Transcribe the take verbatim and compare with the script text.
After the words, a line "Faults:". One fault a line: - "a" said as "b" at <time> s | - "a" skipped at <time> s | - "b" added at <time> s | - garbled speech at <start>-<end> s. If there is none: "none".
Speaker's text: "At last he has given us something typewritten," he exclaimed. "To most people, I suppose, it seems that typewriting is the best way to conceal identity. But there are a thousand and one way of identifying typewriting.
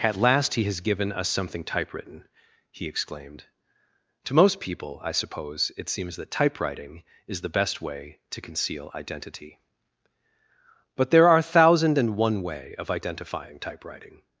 "At last he has given us something typewritten," he exclaimed. "To most people, I suppose, it seems that typewriting is the best way to conceal identity. But there are a thousand and one way of identifying typewriting.
Faults:
none